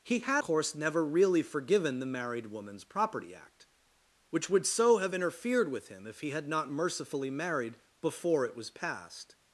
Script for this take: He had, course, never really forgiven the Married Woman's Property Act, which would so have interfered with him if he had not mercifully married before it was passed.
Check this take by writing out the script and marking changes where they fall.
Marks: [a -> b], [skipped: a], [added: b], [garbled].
He had, course, never really forgiven the Married Woman's Property Act, which would so have interfered with him if he had not mercifully married before it was passed.